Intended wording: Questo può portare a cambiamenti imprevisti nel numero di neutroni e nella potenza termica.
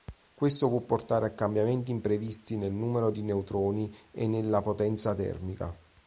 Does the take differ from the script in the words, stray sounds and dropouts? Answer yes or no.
no